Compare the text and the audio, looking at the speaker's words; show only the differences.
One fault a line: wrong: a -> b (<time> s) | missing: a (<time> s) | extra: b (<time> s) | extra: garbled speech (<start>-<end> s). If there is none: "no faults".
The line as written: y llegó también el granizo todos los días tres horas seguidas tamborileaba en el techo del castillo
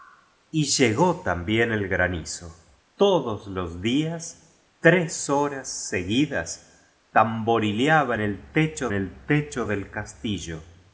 extra: el techo (8.9 s)